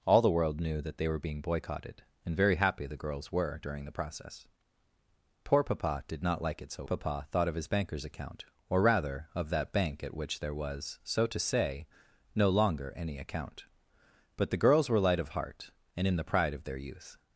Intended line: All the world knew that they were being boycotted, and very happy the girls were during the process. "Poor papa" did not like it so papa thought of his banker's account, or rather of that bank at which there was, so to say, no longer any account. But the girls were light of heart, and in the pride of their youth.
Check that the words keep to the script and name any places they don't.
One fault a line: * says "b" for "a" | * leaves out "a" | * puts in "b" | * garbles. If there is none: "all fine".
all fine